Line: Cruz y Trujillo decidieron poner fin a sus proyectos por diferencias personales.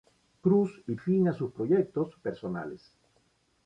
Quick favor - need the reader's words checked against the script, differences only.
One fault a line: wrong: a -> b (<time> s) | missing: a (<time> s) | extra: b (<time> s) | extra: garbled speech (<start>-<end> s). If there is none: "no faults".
missing: Trujillo decidieron poner (0.9 s)
missing: por diferencias (2.1 s)